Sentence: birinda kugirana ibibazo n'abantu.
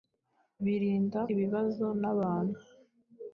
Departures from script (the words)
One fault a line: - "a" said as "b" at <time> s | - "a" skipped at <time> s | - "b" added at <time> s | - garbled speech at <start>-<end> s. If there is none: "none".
- "kugirana" skipped at 1.2 s